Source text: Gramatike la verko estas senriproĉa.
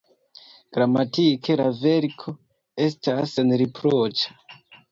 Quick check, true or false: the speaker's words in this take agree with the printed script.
true